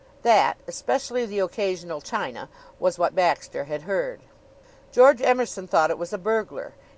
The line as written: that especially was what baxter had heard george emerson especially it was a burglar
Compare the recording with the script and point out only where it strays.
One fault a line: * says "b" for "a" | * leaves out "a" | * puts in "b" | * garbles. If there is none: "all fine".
* puts in "the occasional china"
* says "thought" for "especially"